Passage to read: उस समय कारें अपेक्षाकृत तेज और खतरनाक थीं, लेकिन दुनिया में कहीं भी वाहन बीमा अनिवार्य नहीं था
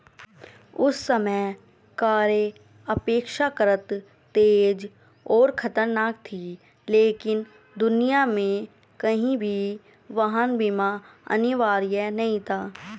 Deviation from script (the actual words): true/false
false